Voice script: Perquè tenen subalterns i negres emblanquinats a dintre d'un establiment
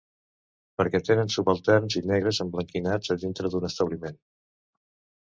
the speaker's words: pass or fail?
pass